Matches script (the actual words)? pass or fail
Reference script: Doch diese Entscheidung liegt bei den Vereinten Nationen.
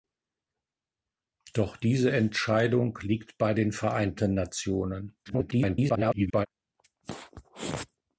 fail